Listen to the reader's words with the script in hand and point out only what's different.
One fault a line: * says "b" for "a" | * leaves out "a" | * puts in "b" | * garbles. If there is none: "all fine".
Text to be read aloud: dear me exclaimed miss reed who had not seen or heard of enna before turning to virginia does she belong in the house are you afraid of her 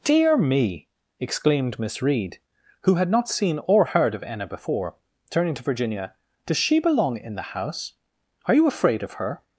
all fine